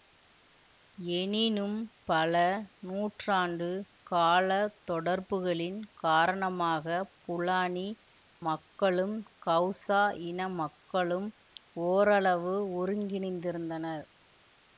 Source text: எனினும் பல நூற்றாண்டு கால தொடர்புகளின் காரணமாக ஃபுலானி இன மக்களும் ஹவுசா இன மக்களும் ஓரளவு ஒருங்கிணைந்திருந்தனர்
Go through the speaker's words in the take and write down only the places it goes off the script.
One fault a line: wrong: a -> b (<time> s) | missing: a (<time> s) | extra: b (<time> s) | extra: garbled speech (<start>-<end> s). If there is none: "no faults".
missing: இன (7.8 s)